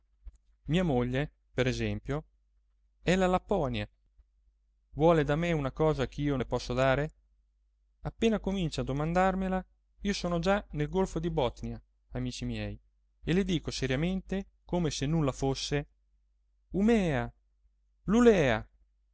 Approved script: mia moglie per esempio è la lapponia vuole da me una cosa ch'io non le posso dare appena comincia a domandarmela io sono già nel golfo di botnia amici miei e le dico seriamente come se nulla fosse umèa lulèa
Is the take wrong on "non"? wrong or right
wrong